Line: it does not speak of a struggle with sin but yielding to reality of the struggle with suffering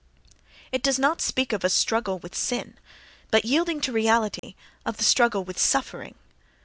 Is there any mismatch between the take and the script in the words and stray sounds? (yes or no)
yes